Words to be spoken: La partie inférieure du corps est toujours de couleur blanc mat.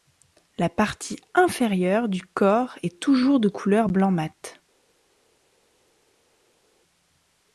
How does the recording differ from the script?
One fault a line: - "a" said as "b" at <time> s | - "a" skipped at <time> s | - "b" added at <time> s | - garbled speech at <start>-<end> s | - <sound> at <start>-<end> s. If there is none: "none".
none